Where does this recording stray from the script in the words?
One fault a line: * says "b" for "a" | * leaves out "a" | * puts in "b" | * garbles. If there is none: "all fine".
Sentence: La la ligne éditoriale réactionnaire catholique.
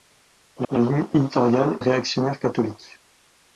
all fine